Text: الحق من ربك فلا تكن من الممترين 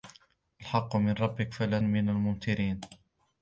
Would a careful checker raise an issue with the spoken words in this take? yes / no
yes